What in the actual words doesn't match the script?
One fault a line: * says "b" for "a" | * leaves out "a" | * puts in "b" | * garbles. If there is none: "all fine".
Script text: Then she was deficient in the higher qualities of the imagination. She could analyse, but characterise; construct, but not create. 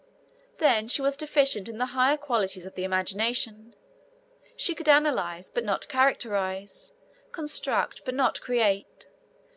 * puts in "not"